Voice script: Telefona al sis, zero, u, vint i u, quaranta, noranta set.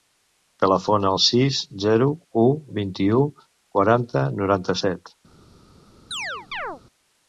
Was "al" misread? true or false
false